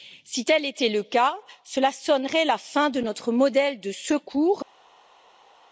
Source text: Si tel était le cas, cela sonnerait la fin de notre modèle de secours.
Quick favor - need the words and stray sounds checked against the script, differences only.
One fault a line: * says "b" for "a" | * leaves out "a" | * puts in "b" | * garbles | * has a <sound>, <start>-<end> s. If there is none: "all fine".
all fine